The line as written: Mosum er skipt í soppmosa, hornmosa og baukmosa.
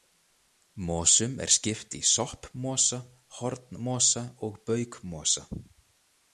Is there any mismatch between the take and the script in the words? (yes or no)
no